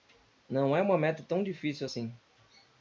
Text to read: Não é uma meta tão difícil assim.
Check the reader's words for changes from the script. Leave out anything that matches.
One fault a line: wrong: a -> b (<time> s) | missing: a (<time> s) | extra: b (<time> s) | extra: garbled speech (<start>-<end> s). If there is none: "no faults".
no faults